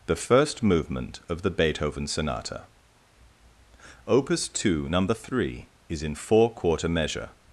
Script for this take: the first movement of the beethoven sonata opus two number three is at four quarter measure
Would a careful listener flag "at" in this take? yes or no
yes